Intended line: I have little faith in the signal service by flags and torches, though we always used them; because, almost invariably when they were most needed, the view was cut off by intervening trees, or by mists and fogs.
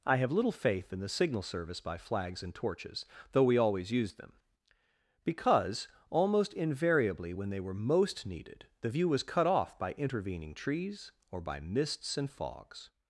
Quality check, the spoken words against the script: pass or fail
pass